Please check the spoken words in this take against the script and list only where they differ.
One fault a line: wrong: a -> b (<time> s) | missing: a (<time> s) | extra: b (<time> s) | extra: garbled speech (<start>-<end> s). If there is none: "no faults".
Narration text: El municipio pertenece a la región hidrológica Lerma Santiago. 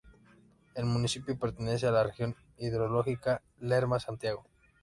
no faults